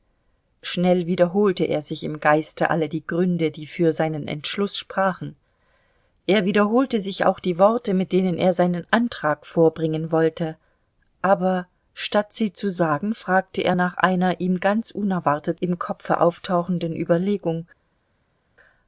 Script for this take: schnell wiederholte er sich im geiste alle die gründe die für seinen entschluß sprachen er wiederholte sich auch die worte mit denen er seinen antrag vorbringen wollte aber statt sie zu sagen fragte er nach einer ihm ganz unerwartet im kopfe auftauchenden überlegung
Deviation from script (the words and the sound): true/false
false